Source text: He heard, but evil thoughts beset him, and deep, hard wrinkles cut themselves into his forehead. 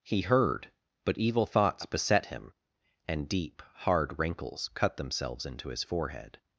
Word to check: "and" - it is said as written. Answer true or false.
true